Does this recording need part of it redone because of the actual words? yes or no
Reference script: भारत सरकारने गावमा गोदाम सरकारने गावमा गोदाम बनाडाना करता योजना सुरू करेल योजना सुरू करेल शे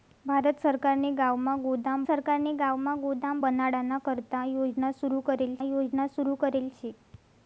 no